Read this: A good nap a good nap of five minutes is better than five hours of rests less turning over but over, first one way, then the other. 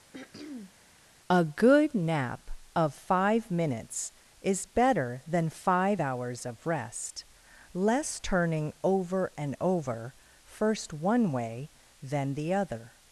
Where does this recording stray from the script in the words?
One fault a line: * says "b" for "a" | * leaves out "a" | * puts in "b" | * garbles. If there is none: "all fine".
* leaves out "a good nap"
* says "rest" for "rests"
* says "and" for "but"